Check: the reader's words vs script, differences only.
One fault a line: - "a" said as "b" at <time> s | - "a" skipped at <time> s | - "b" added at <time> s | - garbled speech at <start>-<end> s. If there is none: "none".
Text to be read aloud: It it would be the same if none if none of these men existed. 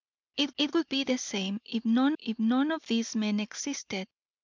none